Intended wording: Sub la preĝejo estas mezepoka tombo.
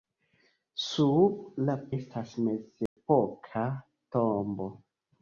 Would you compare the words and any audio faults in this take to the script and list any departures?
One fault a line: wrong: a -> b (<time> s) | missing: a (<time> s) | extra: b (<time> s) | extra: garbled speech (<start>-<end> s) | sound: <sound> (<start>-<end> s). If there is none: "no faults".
missing: preĝejo (1.8 s)
sound: dropout (2.9-3.0 s)